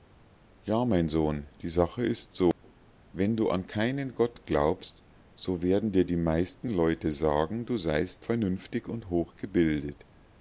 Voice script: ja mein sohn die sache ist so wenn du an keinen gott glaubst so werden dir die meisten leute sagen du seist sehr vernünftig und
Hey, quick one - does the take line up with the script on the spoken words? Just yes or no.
no